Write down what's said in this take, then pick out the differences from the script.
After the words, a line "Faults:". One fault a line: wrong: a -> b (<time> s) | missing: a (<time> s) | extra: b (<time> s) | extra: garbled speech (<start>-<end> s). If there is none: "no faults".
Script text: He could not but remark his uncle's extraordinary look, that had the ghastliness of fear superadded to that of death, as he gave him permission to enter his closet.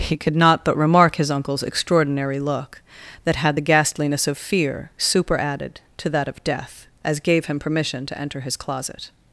He could not but remark his uncle's extraordinary look, that had the ghastliness of fear superadded to that of death, as gave him permission to enter his closet.
Faults:
missing: he (7.2 s)